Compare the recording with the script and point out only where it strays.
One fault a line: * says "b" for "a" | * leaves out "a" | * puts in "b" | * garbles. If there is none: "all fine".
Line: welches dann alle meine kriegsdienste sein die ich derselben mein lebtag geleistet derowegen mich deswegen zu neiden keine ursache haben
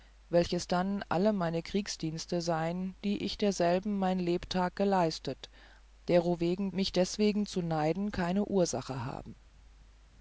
all fine